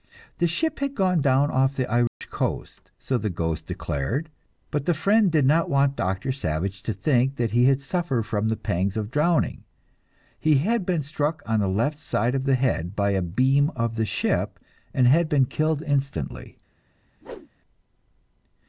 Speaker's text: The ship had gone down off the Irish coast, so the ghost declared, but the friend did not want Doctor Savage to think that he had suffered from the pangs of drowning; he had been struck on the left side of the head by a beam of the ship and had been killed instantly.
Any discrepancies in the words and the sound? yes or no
yes